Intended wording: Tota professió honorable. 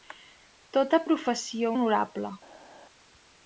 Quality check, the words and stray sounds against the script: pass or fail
pass